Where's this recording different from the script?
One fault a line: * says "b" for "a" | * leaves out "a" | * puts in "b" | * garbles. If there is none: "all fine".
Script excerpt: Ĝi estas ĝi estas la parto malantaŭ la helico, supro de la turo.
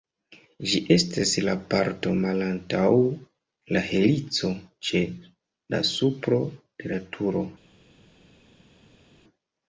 * leaves out "ĝi estas"
* puts in "ĉe la"